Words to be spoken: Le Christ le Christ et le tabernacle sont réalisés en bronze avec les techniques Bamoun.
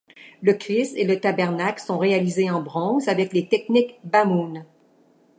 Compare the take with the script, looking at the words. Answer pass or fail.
fail